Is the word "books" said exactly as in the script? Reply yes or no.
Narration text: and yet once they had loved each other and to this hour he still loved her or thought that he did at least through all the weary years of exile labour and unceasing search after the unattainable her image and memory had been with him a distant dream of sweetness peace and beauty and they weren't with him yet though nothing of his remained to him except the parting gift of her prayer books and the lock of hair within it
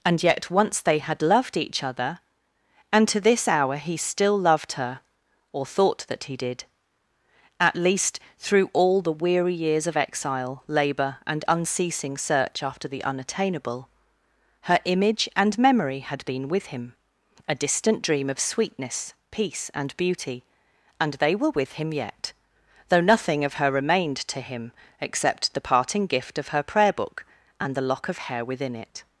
no